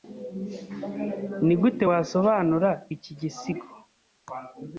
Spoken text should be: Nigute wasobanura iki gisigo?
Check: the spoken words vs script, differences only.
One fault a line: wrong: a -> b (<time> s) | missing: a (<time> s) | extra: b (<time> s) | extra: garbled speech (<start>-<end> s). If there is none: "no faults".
no faults